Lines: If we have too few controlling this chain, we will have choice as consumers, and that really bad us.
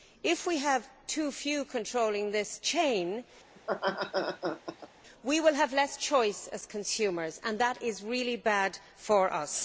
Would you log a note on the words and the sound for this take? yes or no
yes